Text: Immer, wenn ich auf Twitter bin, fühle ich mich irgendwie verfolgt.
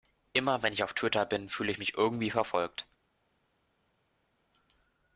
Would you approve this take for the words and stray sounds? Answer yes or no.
yes